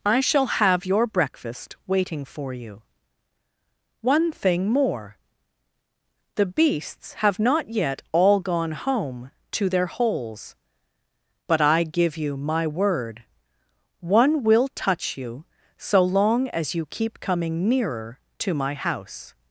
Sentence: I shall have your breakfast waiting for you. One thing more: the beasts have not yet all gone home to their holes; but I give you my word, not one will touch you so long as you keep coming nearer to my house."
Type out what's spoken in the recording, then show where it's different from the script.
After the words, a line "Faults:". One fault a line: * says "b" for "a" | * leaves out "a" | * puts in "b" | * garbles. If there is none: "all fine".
I shall have your breakfast waiting for you. One thing more: the beasts have not yet all gone home to their holes; but I give you my word, one will touch you so long as you keep coming nearer to my house."
Faults:
* leaves out "not"